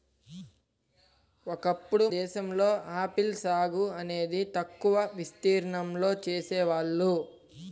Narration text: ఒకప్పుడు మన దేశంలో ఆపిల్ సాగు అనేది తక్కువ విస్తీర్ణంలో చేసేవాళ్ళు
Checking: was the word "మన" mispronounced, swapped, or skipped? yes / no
yes